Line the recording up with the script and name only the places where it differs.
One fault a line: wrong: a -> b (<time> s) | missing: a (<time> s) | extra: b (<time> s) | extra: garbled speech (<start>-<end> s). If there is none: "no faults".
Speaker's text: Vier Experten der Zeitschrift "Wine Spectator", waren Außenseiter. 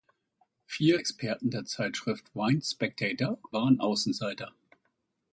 no faults